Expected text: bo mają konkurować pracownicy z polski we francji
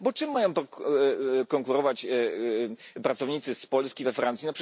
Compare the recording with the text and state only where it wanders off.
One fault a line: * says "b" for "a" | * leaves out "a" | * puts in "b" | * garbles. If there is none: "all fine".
* puts in "czym"